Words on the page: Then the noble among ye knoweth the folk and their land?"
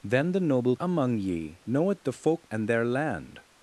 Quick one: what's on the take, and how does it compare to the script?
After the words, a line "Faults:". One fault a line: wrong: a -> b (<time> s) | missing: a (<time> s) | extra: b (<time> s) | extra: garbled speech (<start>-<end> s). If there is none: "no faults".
Then the noble among ye knoweth the folk and their land?"
Faults:
no faults